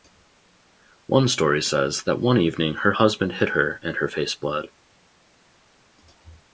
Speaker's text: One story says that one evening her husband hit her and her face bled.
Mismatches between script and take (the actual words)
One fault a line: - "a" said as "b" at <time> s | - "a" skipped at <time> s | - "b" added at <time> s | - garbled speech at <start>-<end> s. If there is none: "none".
none